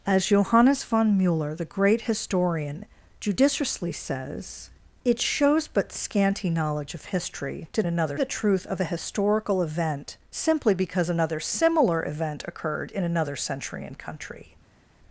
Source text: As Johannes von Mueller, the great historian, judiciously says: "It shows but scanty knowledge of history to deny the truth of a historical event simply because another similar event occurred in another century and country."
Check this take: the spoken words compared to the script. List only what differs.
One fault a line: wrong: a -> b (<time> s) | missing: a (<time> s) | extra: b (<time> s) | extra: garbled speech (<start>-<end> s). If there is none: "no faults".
wrong: deny -> another (7.8 s)